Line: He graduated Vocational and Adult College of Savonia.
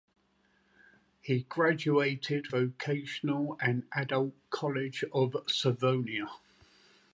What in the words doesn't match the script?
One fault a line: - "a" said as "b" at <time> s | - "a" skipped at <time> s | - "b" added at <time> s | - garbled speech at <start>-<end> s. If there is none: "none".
none